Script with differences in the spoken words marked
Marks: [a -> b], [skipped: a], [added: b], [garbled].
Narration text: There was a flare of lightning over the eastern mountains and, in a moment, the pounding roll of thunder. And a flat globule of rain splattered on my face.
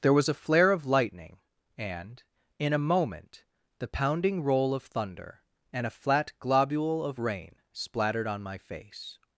There was a flare of lightning [skipped: over the eastern mountains] and, in a moment, the pounding roll of thunder. And a flat globule of rain splattered on my face.